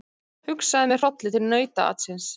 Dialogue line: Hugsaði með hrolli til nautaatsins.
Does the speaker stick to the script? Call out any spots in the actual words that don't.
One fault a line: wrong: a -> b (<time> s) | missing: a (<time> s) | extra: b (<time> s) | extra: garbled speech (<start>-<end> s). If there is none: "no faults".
no faults